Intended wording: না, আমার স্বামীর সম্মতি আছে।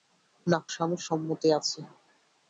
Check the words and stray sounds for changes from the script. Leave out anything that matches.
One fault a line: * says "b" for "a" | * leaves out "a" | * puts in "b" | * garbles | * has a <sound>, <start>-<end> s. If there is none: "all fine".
* leaves out "আমার"